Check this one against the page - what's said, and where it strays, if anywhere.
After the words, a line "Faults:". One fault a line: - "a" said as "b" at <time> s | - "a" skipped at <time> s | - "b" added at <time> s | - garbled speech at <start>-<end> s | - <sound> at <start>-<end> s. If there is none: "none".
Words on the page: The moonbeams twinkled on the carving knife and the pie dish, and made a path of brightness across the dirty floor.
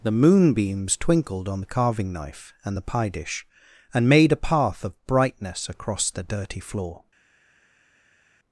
The moonbeams twinkled on the carving knife and the pie dish, and made a path of brightness across the dirty floor.
Faults:
none